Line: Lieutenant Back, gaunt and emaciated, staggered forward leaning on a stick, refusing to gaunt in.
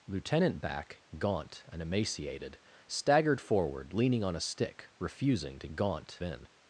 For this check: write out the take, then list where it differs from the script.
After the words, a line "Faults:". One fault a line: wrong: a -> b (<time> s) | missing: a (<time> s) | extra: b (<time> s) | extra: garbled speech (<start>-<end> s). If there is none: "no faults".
Lieutenant Back, gaunt and emaciated, staggered forward leaning on a stick, refusing to gaunt in.
Faults:
no faults